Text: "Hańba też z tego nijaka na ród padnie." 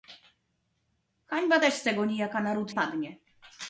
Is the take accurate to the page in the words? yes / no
yes